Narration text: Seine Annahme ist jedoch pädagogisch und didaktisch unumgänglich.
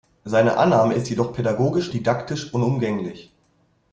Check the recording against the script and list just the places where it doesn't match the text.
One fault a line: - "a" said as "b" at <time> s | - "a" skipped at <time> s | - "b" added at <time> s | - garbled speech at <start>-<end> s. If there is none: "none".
- "und" skipped at 1.9 s